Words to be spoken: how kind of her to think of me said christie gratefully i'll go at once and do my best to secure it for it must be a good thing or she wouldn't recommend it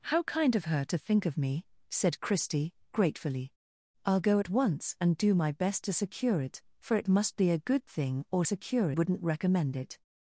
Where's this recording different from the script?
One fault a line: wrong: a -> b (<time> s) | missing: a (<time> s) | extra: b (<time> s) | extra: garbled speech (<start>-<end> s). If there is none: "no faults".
wrong: she -> secure (8.4 s)